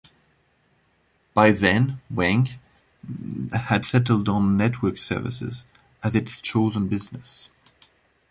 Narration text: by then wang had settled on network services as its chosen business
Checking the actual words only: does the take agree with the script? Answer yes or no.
yes